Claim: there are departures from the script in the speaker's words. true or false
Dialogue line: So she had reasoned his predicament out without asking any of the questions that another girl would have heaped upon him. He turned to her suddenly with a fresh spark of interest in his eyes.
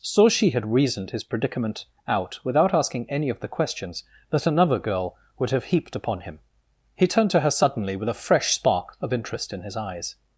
false